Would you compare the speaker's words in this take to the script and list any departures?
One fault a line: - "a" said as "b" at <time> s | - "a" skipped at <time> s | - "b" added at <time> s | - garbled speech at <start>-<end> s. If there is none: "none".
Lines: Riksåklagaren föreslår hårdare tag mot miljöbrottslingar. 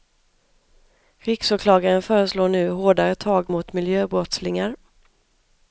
- "nu" added at 2.5 s